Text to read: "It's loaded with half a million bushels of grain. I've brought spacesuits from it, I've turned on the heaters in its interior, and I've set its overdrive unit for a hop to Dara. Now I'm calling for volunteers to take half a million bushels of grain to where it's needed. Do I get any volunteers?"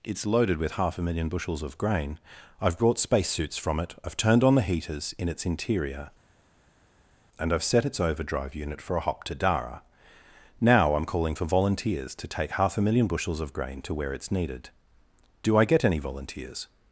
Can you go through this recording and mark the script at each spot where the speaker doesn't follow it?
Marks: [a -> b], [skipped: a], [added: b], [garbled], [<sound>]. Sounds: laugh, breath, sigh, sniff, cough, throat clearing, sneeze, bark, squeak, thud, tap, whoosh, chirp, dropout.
"It's loaded with half a million bushels of grain. I've brought spacesuits from it, I've turned on the heaters in its interior, and I've set its overdrive unit for a hop to Dara. Now I'm calling for volunteers to take half a million bushels of grain to where it's needed. Do I get any volunteers?"